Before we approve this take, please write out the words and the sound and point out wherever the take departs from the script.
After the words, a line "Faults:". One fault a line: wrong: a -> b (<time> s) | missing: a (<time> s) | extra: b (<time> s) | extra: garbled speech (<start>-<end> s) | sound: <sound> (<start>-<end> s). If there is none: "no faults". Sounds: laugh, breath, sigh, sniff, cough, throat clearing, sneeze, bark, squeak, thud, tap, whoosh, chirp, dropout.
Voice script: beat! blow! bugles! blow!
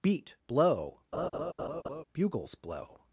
beat! blow! bugles! blow!
Faults:
sound: laugh (1.1-2.0 s)